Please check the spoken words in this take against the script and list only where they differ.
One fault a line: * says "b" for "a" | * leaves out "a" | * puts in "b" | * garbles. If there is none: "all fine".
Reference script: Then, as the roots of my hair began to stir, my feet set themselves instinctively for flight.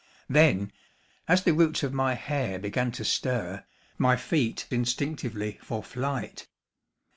* leaves out "set themselves"